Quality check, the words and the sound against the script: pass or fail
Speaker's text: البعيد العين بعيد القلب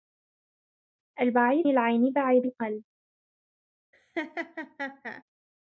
fail